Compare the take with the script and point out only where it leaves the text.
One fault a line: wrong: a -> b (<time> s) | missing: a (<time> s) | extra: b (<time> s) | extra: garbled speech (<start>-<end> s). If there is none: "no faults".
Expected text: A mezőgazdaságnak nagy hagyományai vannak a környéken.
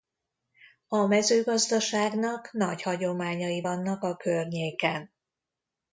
no faults